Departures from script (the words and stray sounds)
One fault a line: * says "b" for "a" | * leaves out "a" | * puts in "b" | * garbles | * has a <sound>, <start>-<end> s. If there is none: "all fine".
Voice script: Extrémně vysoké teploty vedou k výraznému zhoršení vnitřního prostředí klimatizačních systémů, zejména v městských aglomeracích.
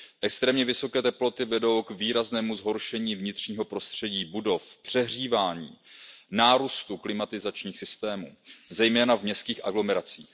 * puts in "budov přehřívání nárůstu"